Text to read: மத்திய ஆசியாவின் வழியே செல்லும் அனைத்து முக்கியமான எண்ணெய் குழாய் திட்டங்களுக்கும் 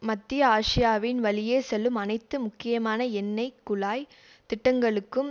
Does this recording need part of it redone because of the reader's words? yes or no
no